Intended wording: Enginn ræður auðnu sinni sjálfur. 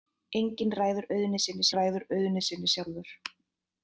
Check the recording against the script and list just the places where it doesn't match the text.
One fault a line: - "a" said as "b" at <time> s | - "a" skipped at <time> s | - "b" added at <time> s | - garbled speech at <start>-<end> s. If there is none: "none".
- "ræður auðnu sinni" added at 1.8 s